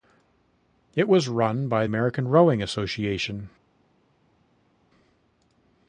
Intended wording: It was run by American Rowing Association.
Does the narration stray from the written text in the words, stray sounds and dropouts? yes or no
no